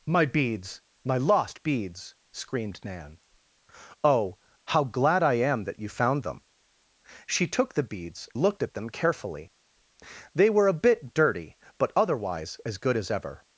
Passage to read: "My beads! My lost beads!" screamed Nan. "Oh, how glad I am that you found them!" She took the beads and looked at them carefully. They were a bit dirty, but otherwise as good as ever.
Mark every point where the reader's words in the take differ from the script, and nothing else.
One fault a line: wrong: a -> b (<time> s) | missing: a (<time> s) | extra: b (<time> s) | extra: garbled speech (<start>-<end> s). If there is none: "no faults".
missing: and (8.3 s)